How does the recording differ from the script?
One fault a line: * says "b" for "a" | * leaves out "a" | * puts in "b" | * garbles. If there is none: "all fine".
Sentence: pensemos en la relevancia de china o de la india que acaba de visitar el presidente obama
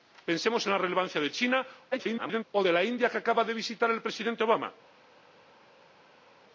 * garbles